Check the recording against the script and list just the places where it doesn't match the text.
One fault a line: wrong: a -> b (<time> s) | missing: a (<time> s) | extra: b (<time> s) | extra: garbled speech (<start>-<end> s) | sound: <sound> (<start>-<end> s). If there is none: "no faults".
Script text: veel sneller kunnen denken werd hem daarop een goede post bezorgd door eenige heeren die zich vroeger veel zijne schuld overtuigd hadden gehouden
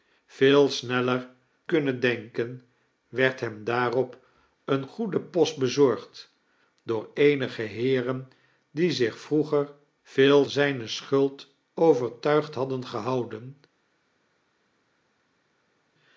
no faults